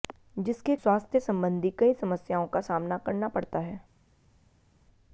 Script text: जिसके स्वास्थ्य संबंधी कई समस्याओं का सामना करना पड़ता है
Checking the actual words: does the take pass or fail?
pass